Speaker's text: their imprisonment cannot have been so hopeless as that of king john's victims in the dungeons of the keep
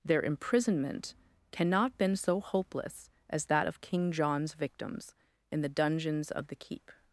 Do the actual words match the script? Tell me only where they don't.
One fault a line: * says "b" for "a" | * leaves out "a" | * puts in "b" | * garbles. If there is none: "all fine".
* leaves out "have"